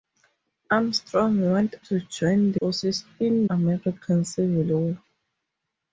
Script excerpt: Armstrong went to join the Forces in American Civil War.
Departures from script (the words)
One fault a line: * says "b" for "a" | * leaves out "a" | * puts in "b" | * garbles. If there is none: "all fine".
all fine